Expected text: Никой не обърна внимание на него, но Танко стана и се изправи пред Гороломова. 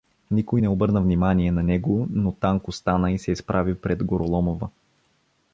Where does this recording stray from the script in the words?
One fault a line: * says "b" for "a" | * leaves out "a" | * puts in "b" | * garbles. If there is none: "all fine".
all fine